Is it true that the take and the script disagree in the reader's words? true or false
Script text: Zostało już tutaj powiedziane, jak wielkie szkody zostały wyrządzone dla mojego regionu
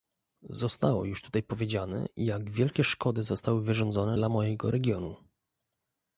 false